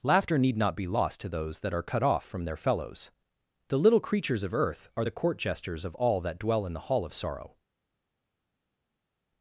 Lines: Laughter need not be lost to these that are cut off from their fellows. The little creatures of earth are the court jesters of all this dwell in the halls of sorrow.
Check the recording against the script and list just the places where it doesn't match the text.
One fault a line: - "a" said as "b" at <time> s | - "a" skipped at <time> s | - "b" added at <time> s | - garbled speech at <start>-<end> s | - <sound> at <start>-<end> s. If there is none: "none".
- "these" said as "those" at 1.3 s
- "this" said as "that" at 6.2 s
- "halls" said as "hall" at 6.9 s